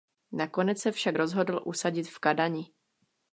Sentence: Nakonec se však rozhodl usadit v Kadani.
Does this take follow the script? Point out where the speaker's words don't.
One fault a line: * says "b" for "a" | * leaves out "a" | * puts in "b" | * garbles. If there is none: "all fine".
all fine